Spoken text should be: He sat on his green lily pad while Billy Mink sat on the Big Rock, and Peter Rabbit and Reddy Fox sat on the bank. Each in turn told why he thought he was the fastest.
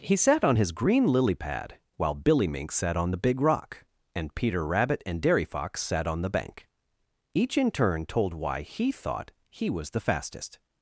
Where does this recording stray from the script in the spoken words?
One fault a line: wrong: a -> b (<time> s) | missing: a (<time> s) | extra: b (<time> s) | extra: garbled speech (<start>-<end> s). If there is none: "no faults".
wrong: Reddy -> Dairy (5.2 s)